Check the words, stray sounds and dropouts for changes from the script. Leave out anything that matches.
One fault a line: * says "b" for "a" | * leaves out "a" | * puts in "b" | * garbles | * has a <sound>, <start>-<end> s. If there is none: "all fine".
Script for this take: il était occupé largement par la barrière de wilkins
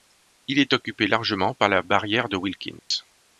* says "est" for "était"
* has a dropout, 2.8-2.9 s